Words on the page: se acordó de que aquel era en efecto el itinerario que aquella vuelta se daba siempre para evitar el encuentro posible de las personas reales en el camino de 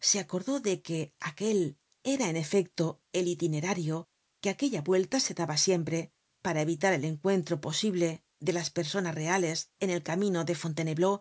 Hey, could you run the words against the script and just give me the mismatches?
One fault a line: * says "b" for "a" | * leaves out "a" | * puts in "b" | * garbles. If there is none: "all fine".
all fine